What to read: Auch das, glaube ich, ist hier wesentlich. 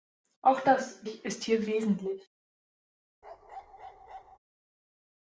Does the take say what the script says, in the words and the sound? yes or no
no